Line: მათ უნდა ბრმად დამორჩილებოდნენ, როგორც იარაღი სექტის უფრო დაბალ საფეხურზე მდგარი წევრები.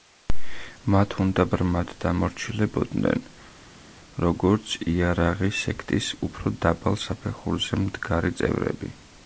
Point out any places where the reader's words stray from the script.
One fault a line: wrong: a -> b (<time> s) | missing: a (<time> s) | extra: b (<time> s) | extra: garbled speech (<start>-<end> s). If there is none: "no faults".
no faults